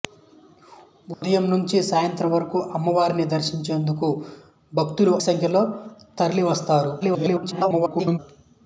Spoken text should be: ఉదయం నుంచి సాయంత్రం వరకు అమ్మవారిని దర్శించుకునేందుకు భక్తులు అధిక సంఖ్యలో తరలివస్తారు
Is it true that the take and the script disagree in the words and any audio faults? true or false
true